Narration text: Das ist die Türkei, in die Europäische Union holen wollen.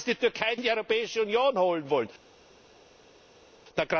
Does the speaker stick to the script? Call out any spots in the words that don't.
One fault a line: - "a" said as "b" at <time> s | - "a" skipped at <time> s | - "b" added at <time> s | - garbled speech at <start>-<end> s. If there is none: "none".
none